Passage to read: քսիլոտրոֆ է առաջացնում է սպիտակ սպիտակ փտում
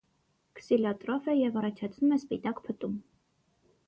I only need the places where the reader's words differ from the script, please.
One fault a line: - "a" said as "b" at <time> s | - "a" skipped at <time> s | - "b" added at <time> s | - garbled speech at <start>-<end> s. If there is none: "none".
- "և" added at 1.4 s
- "սպիտակ" skipped at 2.6 s